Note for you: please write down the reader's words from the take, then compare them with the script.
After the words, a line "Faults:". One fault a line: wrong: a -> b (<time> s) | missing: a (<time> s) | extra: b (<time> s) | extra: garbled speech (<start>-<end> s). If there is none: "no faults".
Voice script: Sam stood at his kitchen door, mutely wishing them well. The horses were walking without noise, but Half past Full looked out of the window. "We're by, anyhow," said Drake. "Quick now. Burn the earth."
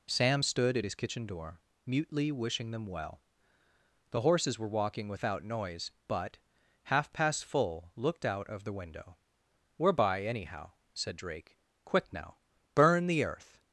Sam stood at his kitchen door, mutely wishing them well. The horses were walking without noise, but Half past Full looked out of the window. "We're by, anyhow," said Drake. "Quick now. Burn the earth."
Faults:
no faults